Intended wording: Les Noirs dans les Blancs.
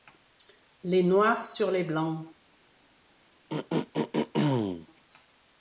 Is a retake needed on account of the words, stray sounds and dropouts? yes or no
yes